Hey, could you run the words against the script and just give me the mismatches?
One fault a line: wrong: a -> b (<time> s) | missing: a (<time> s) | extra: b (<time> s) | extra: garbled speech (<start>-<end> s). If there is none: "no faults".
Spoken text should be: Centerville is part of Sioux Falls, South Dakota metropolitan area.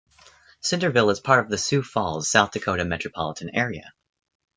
extra: the (1.5 s)